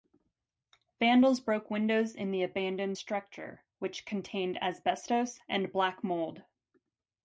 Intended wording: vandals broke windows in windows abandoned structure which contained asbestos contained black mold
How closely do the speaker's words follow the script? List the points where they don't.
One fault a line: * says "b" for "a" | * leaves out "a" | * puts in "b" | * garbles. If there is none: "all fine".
* says "the" for "windows"
* says "and" for "contained"